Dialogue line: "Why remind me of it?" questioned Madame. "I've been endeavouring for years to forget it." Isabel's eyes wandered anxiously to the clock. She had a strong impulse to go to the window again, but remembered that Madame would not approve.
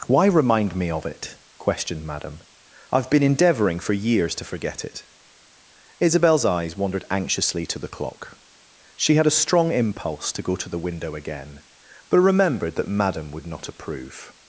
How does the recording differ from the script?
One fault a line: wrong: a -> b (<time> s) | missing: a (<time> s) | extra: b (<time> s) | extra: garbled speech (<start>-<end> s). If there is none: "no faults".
no faults